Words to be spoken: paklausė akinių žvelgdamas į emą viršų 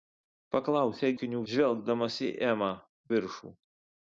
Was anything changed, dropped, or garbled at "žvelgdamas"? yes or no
no